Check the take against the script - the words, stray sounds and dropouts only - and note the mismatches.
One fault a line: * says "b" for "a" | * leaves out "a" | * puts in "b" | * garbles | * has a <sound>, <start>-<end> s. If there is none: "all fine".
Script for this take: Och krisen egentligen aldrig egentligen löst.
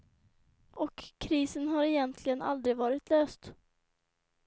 * puts in "har"
* says "varit" for "egentligen"